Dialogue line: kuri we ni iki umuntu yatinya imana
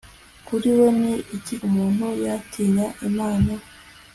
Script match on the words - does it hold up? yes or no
yes